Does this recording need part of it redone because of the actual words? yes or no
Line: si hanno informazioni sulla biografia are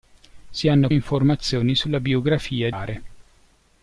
no